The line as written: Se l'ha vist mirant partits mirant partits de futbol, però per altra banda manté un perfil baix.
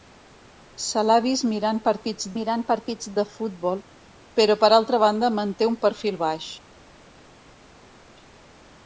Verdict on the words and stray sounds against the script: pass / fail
pass